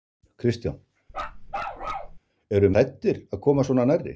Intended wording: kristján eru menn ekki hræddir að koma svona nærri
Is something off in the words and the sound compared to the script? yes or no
yes